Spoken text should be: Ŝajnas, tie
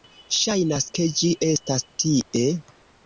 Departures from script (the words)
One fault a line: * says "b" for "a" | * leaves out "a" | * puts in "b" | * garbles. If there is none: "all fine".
* puts in "ke ĝi estas"